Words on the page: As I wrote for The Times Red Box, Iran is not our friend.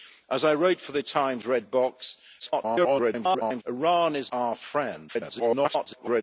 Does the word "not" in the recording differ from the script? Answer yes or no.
yes